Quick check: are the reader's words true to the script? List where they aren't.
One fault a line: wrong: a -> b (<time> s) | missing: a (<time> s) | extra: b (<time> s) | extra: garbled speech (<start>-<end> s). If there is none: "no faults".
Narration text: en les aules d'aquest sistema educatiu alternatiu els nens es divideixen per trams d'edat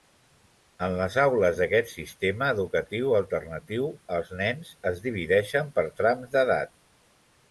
no faults